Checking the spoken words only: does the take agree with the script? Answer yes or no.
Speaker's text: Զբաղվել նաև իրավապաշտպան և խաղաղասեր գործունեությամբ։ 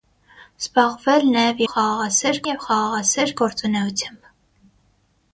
no